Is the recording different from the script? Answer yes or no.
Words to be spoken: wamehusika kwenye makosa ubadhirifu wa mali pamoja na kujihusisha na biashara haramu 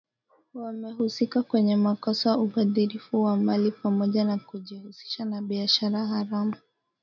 no